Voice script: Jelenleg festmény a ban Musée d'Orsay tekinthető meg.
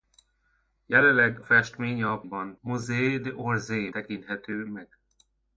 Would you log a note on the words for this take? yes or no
no